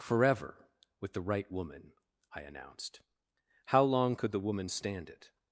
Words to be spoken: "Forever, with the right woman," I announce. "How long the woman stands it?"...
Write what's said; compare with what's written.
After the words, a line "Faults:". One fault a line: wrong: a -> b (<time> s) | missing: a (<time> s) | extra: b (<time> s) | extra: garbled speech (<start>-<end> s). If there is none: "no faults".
"Forever, with the right woman," I announced. "How long could the woman stand it?"...
Faults:
wrong: announce -> announced (2.4 s)
extra: could (4.1 s)
wrong: stands -> stand (4.7 s)